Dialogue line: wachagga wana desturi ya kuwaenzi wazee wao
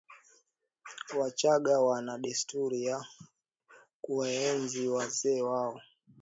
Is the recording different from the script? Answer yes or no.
no